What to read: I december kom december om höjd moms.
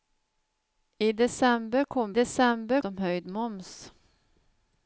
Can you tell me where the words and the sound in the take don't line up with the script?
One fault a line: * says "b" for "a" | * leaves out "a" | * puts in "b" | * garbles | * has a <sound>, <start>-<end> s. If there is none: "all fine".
all fine